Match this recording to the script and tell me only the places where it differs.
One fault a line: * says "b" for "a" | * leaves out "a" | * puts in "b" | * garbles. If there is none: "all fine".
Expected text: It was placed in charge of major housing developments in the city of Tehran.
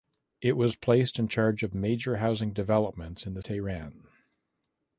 * leaves out "city of"